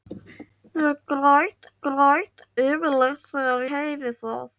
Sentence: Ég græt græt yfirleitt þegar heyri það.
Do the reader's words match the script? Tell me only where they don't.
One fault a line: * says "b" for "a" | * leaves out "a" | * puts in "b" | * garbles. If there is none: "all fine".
all fine